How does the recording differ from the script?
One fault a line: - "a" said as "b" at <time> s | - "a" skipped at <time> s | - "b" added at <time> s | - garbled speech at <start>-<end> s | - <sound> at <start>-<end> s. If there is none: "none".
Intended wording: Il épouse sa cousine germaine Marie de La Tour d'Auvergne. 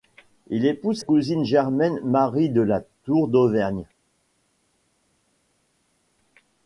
- "sa" skipped at 1.0 s